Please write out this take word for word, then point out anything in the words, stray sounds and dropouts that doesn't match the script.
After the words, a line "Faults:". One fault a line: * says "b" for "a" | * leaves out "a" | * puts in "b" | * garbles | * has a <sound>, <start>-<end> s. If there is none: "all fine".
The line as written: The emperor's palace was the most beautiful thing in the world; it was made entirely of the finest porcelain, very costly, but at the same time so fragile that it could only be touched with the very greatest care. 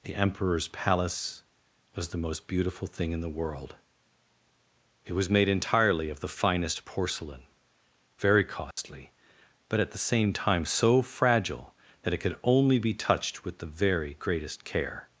The emperor's palace was the most beautiful thing in the world; it was made entirely of the finest porcelain, very costly, but at the same time so fragile that it could only be touched with the very greatest care.
Faults:
* has a dropout, 8.7-8.8 s